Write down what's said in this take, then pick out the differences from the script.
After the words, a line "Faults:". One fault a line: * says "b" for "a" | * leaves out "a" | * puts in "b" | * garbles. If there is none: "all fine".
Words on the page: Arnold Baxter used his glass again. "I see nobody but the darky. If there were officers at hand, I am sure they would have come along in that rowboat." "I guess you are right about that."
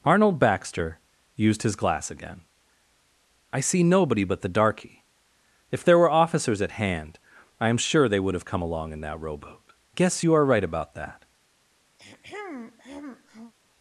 Arnold Baxter used his glass again. "I see nobody but the darky. If there were officers at hand, I am sure they would have come along in that rowboat." "guess you are right about that."
Faults:
* leaves out "I"